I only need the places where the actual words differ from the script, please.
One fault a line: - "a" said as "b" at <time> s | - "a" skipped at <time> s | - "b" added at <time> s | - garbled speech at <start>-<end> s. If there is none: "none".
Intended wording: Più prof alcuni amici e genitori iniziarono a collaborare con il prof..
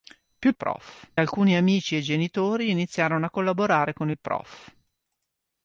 none